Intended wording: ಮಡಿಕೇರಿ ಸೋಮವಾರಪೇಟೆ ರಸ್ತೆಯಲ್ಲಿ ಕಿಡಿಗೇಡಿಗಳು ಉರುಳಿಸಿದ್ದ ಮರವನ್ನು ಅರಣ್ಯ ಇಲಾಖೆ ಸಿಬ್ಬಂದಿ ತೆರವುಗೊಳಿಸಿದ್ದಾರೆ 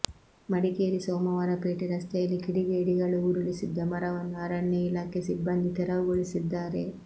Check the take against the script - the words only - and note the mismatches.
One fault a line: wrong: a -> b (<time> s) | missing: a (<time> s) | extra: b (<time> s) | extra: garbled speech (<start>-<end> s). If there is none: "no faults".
no faults